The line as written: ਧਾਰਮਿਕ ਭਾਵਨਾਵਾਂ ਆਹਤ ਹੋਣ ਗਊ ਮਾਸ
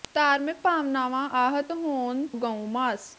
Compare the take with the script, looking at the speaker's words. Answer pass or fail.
pass